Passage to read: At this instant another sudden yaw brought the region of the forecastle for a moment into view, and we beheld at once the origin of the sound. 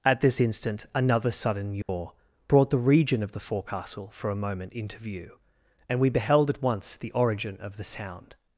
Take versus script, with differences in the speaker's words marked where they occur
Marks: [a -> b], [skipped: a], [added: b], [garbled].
At this instant another sudden yaw brought the region of the forecastle for a moment into view, and we beheld at once the origin of the sound.